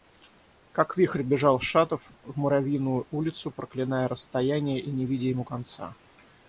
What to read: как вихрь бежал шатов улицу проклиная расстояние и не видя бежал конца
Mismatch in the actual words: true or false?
true